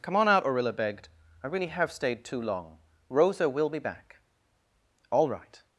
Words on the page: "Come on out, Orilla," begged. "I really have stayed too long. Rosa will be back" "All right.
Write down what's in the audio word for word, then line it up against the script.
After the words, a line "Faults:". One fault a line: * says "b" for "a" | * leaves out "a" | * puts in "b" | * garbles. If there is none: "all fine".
"Come on out, Orilla," begged. "I really have stayed too long. Rosa will be back" "All right.
Faults:
all fine